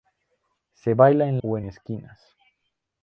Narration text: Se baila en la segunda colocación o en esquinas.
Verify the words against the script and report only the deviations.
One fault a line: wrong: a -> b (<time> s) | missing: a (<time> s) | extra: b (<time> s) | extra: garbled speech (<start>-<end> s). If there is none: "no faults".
missing: la segunda colocación (1.4 s)